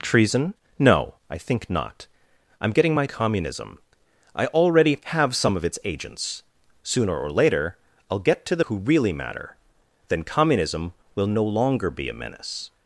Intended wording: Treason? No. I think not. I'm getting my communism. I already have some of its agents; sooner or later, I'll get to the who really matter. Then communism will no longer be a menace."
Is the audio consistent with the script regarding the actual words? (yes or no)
yes